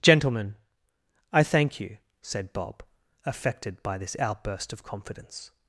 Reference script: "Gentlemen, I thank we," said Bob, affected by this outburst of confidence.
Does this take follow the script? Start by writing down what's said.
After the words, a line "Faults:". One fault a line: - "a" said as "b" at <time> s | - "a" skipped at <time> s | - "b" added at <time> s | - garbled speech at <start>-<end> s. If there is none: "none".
"Gentlemen, I thank you," said Bob, affected by this outburst of confidence.
Faults:
- "we" said as "you" at 1.8 s